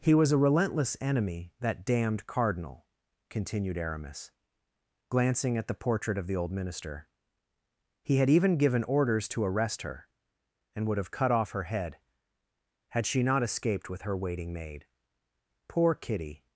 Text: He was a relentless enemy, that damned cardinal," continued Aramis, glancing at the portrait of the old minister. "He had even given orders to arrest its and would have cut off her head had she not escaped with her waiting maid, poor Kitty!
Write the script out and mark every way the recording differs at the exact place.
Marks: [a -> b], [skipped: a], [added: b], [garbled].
He was a relentless enemy, that damned cardinal," continued Aramis, glancing at the portrait of the old minister. "He had even given orders to arrest [its -> her] and would have cut off her head had she not escaped with her waiting maid, poor Kitty!